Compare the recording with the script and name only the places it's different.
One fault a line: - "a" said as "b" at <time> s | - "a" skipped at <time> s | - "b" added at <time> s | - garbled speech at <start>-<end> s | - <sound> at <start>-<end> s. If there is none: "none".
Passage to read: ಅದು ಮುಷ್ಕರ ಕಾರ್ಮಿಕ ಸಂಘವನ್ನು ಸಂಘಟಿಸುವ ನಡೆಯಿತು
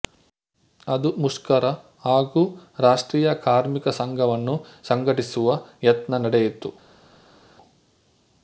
- "ಹಾಗೂ ರಾಷ್ಟ್ರೀಯ" added at 2.0 s
- "ಯತ್ನ" added at 5.8 s